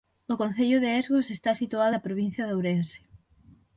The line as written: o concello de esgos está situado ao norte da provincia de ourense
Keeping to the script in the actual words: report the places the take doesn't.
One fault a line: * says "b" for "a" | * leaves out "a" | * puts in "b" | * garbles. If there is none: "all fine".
* leaves out "ao norte"